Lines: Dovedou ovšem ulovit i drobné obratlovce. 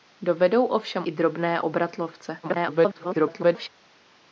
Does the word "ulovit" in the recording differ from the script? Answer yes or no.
yes